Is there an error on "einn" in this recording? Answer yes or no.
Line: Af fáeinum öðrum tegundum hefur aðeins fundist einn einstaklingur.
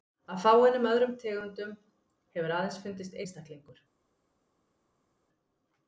yes